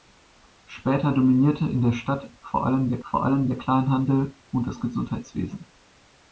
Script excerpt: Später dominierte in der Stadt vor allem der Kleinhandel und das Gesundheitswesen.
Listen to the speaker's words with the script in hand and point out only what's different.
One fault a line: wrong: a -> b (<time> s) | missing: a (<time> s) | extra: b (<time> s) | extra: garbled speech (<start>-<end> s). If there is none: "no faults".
extra: vor allem der (3.0 s)